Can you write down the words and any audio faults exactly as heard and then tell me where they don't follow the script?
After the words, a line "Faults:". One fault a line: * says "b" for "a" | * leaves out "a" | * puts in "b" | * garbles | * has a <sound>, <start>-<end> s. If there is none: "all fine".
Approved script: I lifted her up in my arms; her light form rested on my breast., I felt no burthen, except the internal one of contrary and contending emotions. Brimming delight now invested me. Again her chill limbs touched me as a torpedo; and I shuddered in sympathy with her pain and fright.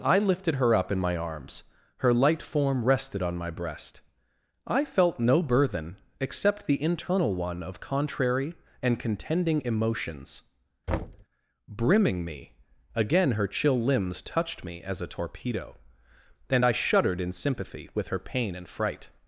I lifted her up in my arms; her light form rested on my breast., I felt no burthen, except the internal one of contrary and contending emotions. Brimming me. Again her chill limbs touched me as a torpedo; and I shuddered in sympathy with her pain and fright.
Faults:
* has a thud, 10.9-11.3 s
* leaves out "delight now invested"